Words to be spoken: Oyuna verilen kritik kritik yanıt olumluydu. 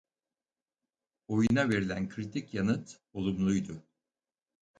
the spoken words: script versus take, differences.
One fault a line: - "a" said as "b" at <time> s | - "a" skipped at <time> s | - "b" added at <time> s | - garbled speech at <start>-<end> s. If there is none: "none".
- "kritik" skipped at 2.5 s